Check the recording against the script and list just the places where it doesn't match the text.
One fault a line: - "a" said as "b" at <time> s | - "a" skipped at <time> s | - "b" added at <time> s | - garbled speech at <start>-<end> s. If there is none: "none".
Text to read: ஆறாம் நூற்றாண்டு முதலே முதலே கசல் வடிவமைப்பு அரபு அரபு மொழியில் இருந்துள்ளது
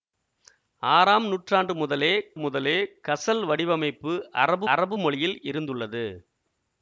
none